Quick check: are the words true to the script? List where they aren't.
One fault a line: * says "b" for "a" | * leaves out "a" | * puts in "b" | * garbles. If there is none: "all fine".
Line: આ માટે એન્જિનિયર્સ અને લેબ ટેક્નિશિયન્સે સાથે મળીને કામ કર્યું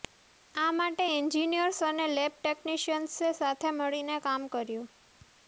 all fine